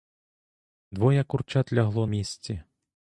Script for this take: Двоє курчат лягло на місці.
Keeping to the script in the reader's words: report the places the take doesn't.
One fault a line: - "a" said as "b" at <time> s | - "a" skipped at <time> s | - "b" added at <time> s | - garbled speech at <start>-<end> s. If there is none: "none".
- "на" skipped at 2.1 s